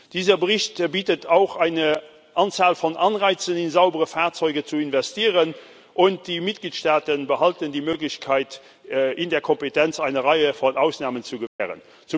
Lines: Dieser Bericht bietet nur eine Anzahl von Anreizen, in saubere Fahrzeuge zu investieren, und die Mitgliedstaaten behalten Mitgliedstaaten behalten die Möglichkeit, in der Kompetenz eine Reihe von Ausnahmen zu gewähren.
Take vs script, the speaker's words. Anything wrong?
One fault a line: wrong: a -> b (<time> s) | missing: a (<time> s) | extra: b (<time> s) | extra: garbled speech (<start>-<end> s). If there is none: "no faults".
wrong: nur -> auch (1.3 s)
missing: Mitgliedstaaten behalten (7.7 s)